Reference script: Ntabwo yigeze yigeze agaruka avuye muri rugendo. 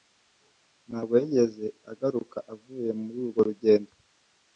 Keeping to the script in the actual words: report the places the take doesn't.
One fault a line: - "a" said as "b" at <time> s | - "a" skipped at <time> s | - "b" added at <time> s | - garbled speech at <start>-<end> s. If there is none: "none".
- "yigeze" skipped at 1.6 s
- "urwo" added at 3.2 s